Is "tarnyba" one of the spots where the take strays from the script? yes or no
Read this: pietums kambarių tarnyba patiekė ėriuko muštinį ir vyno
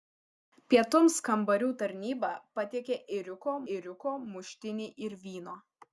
no